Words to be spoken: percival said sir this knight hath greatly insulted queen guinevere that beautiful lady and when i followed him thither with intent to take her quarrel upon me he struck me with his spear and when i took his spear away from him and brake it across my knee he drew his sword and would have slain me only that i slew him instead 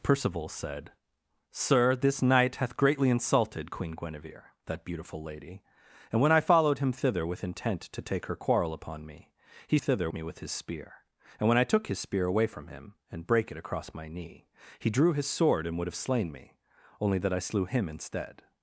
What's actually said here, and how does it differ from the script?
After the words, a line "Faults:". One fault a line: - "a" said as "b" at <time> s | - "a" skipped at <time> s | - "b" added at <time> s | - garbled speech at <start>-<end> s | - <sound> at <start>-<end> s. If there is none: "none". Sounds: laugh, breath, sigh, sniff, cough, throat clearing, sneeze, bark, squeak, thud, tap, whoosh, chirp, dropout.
percival said sir this knight hath greatly insulted queen guinevere that beautiful lady and when i followed him thither with intent to take her quarrel upon me he thither me with his spear and when i took his spear away from him and brake it across my knee he drew his sword and would have slain me only that i slew him instead
Faults:
- "struck" said as "thither" at 9.8 s